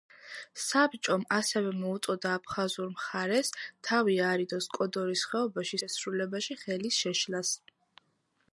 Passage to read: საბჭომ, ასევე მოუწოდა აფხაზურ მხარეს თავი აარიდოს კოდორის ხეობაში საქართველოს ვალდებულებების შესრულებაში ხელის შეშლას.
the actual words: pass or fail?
fail